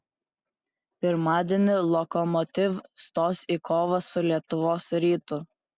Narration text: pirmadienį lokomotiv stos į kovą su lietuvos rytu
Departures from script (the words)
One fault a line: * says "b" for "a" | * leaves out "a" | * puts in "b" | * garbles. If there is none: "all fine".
all fine